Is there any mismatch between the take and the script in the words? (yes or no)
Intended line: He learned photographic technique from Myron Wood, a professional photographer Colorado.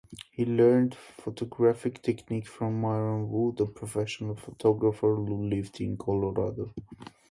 yes